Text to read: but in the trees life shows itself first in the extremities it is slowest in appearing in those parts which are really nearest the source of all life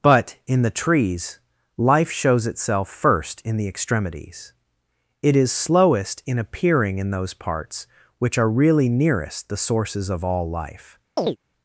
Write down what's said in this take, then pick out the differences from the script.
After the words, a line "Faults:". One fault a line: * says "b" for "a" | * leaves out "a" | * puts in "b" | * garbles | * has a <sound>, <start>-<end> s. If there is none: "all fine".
but in the trees life shows itself first in the extremities it is slowest in appearing in those parts which are really nearest the sources of all life
Faults:
* says "sources" for "source"
* has a chirp, 11.2-11.4 s